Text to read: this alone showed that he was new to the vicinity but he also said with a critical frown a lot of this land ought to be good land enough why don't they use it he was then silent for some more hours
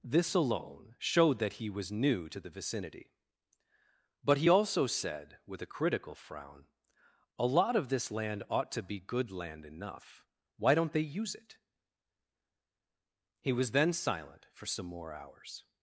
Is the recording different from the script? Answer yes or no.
no